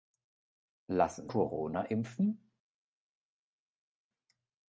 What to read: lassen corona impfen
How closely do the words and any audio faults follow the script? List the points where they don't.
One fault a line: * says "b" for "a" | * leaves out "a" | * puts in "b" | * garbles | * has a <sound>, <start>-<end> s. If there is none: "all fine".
all fine